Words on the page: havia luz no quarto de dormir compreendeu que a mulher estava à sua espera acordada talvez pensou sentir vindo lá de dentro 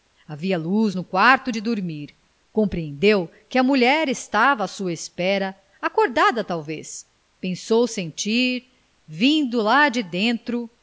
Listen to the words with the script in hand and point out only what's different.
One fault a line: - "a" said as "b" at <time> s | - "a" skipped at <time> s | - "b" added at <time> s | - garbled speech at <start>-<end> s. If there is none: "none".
none